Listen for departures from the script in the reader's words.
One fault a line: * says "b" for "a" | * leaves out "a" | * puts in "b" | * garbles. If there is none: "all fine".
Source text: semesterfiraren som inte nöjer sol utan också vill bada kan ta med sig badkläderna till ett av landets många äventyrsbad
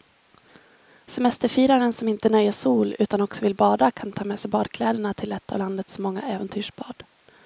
all fine